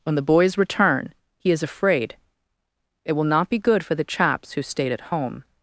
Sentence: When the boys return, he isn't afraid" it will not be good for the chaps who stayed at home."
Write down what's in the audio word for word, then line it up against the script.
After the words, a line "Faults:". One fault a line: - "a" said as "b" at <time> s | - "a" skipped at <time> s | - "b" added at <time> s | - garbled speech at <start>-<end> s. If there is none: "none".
When the boys return, he is afraid" it will not be good for the chaps who stayed at home."
Faults:
- "isn't" said as "is" at 1.5 s